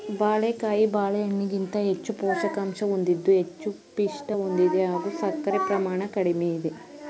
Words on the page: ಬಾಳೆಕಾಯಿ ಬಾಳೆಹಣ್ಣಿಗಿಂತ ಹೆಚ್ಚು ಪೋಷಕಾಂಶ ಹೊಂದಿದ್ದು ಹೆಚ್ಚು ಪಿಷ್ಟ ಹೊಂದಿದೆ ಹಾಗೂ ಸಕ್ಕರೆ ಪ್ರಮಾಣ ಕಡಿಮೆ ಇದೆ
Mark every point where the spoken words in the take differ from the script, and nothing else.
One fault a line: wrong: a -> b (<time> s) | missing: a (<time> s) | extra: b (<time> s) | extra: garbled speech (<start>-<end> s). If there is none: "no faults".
no faults